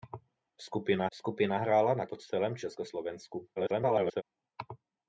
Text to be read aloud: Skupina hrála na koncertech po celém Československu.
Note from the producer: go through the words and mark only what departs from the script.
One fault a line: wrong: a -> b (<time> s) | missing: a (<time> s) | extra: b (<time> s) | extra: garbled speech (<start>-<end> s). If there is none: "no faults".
extra: skupina (1.1 s)
missing: koncertech (2.1 s)
extra: garbled speech (3.6-4.2 s)